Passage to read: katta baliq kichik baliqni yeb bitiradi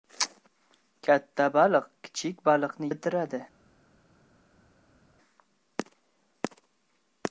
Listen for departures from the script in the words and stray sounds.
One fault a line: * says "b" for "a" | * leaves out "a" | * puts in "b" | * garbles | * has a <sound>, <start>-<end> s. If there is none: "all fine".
* leaves out "yeb"